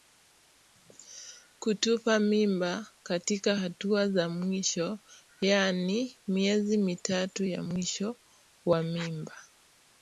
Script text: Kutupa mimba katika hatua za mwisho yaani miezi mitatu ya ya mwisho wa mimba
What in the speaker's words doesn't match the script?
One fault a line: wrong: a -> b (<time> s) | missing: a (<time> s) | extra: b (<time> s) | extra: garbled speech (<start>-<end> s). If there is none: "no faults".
missing: ya (7.6 s)